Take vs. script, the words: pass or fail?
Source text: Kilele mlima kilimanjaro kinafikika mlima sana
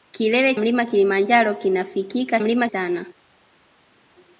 pass